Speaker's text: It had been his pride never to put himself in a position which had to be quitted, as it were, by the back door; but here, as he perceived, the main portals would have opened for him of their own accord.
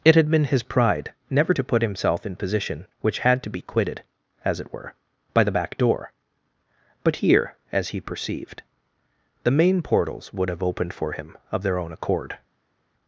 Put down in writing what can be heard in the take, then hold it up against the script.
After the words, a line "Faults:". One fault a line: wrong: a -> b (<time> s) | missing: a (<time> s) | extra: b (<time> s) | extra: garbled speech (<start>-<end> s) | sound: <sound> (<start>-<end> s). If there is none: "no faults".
It had been his pride never to put himself in position which had to be quitted, as it were, by the back door; but here, as he perceived, the main portals would have opened for him of their own accord.
Faults:
missing: a (2.4 s)